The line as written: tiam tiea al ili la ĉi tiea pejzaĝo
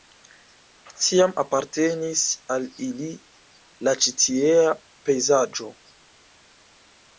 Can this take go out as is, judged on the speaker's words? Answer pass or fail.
fail